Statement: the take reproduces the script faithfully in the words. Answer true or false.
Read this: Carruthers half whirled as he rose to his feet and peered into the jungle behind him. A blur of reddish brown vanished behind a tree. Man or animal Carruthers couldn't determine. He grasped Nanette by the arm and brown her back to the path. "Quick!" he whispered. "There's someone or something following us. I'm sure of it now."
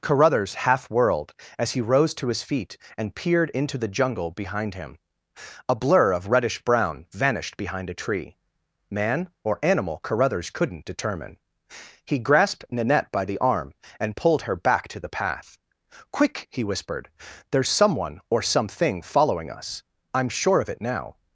false